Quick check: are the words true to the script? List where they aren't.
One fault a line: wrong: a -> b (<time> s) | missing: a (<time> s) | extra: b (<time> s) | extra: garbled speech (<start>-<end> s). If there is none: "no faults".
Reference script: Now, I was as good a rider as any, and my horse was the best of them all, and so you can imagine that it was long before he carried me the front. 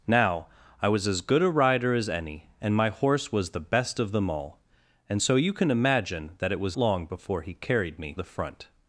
no faults